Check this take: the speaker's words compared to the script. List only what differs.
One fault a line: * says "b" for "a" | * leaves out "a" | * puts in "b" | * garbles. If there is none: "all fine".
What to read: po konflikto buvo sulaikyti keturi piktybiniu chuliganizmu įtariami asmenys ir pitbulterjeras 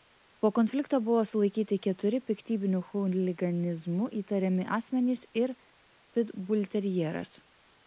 all fine